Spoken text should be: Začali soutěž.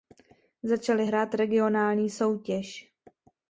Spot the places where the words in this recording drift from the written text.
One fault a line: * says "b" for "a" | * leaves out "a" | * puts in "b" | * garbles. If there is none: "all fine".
* puts in "hrát regionální"